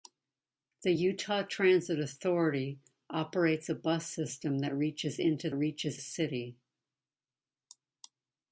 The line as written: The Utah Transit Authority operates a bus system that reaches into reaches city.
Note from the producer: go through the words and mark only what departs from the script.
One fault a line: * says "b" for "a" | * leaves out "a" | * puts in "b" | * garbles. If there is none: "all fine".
all fine